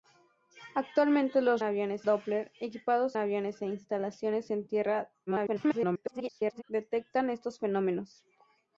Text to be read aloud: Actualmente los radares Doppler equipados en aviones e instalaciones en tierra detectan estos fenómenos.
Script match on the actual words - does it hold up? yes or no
no